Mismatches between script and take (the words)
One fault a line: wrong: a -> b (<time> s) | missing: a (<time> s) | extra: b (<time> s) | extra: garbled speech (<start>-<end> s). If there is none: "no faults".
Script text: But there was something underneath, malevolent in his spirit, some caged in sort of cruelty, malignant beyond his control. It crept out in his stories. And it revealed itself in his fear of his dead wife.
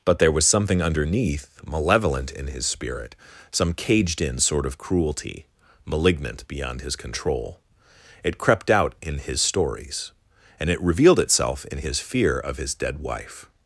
no faults